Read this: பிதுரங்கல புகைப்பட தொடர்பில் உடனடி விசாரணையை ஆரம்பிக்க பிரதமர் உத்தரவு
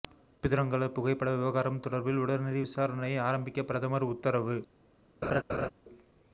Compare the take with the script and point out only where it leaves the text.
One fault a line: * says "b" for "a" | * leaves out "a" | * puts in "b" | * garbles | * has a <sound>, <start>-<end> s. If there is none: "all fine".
* puts in "விவகாரம்"
* has a laugh, 5.2-5.7 s